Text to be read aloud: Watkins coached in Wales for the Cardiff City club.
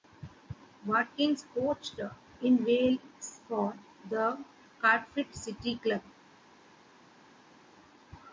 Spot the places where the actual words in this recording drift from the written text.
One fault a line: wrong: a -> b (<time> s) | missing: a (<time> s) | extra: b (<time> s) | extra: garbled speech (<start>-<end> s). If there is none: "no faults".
no faults